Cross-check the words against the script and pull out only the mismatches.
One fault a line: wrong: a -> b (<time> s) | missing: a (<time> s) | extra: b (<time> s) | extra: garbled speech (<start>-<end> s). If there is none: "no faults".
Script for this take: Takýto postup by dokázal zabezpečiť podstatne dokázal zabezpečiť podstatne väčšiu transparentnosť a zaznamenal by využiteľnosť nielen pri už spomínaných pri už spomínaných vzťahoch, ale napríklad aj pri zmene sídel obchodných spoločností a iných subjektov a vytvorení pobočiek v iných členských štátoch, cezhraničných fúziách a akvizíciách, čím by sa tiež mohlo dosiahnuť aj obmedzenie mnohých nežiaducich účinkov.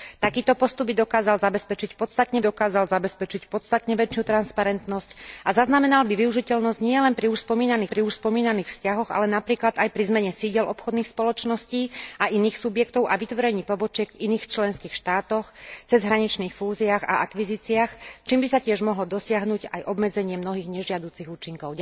no faults